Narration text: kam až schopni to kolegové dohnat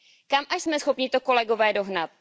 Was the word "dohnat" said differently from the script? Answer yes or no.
no